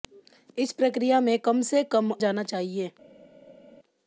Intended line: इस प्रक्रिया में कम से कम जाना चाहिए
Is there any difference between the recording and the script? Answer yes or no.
no